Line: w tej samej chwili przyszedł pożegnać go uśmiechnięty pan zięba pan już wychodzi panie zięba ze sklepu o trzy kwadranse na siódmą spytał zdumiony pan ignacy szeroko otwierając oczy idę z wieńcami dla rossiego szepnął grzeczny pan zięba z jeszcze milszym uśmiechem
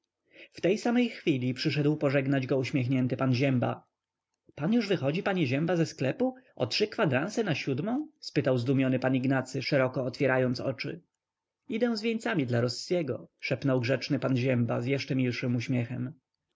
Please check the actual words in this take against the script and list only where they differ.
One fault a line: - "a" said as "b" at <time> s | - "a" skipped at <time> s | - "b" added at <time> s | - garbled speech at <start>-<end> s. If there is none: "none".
none